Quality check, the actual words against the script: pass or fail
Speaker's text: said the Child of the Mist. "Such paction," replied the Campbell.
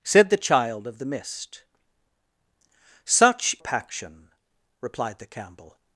pass